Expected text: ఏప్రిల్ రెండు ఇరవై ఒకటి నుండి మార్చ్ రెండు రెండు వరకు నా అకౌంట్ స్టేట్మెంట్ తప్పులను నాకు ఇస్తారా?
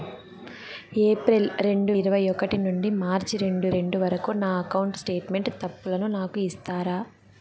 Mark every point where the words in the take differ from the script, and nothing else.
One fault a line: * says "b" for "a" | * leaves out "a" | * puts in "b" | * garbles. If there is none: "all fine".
all fine